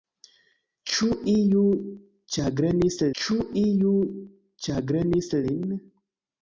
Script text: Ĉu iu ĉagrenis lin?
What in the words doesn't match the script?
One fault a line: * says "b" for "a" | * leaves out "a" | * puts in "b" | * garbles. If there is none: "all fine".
* puts in "ĉu iu ĉagrenis"